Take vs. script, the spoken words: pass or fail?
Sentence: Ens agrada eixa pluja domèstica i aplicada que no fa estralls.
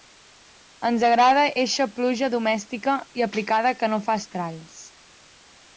pass